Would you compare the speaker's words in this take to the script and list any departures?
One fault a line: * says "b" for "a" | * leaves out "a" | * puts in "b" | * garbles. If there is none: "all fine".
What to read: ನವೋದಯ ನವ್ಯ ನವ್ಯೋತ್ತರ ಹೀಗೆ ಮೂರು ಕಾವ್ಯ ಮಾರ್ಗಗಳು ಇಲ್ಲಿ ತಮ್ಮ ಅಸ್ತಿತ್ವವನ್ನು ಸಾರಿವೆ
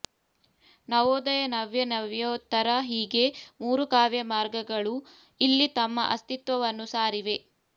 all fine